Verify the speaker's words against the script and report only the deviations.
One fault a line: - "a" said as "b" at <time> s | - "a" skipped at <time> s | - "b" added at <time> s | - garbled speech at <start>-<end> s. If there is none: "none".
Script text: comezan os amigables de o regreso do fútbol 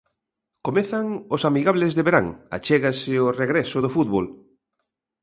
- "verán achégase" added at 2.1 s